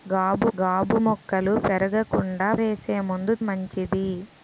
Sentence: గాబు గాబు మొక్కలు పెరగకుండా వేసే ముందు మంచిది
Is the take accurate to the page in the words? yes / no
yes